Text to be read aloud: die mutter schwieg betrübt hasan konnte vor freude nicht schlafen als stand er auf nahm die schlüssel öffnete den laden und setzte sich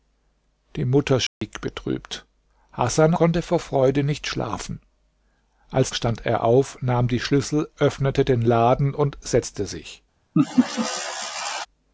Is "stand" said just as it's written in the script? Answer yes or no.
yes